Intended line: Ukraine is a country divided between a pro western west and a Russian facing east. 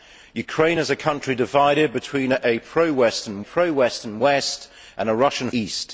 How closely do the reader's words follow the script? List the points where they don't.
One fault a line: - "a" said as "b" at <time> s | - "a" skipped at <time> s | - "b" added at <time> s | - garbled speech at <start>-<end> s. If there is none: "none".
- "pro western" added at 3.4 s
- "facing" skipped at 5.5 s